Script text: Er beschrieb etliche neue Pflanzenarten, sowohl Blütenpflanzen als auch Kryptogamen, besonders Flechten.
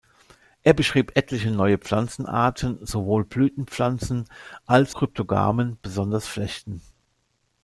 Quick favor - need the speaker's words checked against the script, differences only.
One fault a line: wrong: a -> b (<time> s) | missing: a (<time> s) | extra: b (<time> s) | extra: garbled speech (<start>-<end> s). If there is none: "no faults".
missing: auch (4.9 s)